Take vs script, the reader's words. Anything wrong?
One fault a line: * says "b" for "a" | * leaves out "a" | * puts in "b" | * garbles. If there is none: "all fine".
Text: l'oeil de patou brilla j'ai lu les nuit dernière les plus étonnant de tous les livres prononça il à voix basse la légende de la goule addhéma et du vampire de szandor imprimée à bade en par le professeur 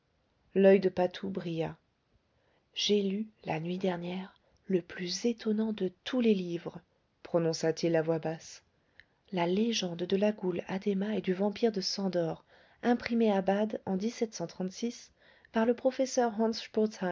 * says "la" for "les"
* says "le" for "les"
* puts in "t"